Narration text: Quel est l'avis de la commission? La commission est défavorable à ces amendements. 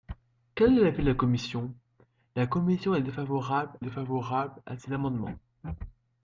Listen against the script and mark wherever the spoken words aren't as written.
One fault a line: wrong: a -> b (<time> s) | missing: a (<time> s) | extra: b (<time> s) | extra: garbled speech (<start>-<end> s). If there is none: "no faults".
extra: défavorable (3.8 s)